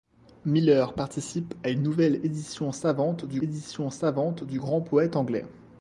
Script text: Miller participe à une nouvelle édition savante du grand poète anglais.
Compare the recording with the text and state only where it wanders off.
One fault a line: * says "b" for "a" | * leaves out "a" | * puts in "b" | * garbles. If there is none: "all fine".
* puts in "édition savante du"